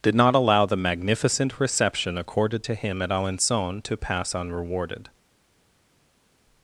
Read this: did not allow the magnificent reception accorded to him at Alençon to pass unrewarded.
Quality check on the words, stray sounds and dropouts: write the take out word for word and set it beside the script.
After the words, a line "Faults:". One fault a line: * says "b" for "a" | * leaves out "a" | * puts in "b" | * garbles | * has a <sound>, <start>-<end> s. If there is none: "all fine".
did not allow the magnificent reception accorded to him at Alençon to pass unrewarded.
Faults:
all fine